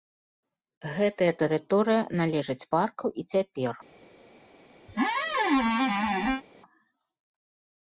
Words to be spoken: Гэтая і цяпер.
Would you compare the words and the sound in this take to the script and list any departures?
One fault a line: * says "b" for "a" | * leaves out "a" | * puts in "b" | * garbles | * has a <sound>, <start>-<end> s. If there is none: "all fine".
* puts in "тэрыторыя належыць парку"
* has a squeak, 4.9-6.4 s